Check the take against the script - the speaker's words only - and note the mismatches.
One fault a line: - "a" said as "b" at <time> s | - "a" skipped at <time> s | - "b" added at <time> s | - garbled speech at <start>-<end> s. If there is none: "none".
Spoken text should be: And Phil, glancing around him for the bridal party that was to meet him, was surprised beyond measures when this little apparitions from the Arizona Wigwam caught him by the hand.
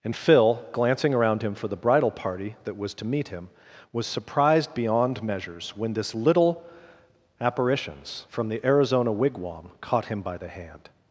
none